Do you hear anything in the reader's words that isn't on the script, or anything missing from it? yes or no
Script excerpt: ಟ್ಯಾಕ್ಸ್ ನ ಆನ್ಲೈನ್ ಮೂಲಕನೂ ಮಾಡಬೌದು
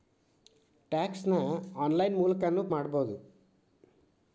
no